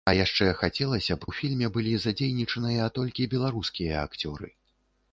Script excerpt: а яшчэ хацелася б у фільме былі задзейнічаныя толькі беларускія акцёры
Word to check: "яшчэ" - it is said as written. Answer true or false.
true